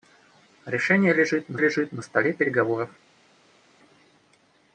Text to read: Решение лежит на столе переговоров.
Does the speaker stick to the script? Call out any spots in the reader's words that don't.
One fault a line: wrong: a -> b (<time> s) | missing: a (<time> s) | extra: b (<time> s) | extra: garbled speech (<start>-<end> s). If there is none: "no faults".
extra: лежит на (1.6 s)